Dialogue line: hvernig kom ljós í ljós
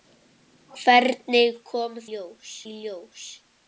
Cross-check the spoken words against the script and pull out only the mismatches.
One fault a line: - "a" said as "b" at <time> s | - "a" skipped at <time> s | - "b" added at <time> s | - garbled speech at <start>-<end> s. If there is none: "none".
none